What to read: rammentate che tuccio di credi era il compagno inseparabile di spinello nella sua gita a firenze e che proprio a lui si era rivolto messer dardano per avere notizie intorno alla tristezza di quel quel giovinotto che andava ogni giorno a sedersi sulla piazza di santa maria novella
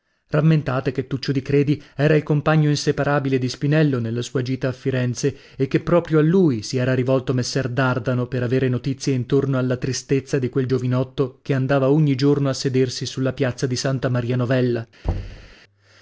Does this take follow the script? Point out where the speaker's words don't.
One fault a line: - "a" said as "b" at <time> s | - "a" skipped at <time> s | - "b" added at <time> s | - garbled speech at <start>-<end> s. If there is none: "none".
- "quel" skipped at 10.7 s